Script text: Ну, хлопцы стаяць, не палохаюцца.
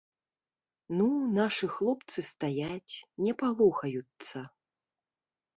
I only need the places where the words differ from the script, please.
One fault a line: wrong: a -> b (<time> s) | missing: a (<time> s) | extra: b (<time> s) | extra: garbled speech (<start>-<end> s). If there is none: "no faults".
extra: нашы (1.4 s)